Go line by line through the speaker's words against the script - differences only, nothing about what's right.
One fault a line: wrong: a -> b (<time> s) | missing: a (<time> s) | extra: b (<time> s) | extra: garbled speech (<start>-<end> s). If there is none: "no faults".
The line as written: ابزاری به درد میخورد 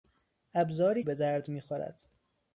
no faults